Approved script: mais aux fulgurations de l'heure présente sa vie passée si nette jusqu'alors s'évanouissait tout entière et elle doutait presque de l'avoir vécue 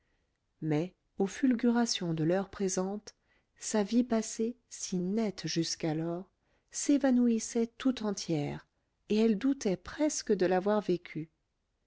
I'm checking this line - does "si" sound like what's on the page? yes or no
yes